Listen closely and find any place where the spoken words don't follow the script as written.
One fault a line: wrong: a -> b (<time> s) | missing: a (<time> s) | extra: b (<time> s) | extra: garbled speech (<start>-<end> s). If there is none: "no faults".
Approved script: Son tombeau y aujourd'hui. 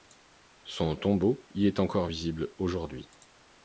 extra: est encore visible (1.7 s)